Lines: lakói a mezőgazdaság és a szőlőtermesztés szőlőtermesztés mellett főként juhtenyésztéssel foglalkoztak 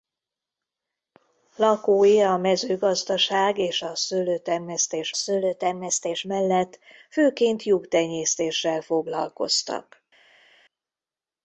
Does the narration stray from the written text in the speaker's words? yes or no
no